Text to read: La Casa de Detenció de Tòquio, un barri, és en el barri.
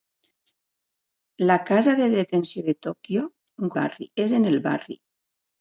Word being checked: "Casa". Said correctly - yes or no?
yes